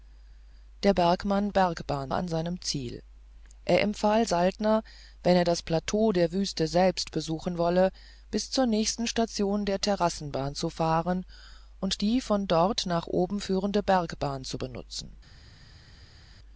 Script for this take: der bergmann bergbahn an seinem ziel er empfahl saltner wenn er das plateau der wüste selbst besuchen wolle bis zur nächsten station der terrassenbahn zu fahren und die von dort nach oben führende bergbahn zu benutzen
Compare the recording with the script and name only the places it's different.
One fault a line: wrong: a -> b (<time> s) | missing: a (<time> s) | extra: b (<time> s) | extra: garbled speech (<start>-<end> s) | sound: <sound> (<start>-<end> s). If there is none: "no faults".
no faults